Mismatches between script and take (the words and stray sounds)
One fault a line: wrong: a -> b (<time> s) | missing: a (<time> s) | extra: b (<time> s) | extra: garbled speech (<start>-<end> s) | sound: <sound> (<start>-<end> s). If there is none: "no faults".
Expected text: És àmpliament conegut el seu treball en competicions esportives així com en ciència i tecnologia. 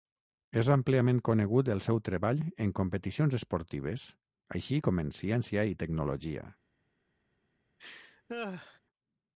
sound: laugh (7.8-8.8 s)